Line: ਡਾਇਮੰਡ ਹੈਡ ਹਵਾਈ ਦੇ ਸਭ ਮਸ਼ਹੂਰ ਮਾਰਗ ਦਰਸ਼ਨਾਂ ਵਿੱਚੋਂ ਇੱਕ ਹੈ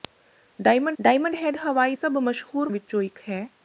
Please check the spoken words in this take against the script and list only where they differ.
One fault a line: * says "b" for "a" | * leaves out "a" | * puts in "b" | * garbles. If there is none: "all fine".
* puts in "ਡਾਇਮੰਡ"
* leaves out "ਦੇ"
* leaves out "ਮਾਰਗ ਦਰਸ਼ਨਾਂ"